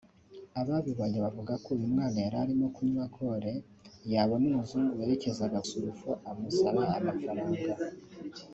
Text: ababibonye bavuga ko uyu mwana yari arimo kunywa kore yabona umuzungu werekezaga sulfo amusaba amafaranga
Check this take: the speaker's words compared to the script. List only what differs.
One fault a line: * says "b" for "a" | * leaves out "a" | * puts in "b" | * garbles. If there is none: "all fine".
all fine